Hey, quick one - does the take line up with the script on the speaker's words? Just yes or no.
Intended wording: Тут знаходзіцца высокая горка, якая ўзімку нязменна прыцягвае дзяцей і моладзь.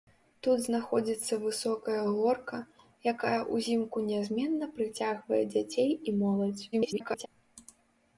no